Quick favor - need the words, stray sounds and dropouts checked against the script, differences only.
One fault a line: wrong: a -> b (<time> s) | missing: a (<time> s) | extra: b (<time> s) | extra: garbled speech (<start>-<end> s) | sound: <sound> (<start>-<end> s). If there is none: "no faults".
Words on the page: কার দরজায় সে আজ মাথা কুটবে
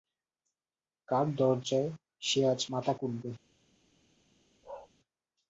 sound: bark (4.6-4.9 s)